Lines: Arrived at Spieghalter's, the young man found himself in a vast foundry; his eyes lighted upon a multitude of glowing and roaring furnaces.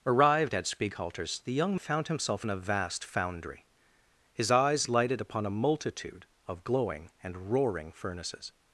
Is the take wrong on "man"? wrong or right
wrong